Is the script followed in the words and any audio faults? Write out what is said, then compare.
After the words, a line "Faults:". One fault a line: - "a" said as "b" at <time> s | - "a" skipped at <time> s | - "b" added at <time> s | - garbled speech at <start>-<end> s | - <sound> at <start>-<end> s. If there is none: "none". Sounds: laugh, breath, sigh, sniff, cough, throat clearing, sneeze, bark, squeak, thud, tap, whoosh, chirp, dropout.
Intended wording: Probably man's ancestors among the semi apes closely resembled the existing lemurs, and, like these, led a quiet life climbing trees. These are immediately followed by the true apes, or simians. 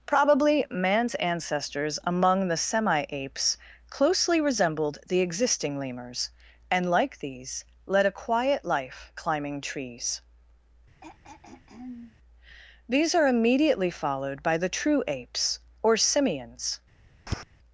Probably man's ancestors among the semi apes closely resembled the existing lemurs, and, like these, led a quiet life climbing trees. These are immediately followed by the true apes, or simians.
Faults:
- throat clearing at 11.0-12.2 s
- tap at 17.3-17.4 s